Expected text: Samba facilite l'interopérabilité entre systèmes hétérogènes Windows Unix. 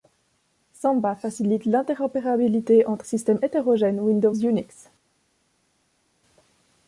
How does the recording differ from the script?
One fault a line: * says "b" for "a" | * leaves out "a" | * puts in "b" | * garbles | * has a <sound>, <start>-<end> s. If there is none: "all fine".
all fine